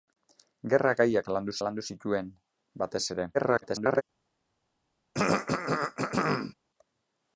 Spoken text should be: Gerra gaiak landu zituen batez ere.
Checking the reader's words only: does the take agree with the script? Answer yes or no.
no